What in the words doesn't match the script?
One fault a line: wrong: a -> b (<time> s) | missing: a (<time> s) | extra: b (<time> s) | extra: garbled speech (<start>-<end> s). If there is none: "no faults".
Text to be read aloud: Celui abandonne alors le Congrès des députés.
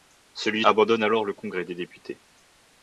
no faults